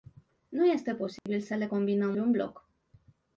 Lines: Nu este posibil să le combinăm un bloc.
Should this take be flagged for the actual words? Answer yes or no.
no